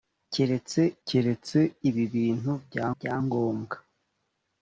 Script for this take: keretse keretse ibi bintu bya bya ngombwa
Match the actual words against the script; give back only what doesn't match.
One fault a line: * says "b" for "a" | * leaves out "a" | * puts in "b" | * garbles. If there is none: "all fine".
all fine